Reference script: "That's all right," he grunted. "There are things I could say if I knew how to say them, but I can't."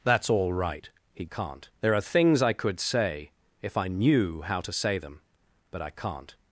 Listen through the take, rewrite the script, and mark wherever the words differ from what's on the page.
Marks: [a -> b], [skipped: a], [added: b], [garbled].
"That's all right," he [grunted. -> can't] "There are things I could say if I knew how to say them, but I can't."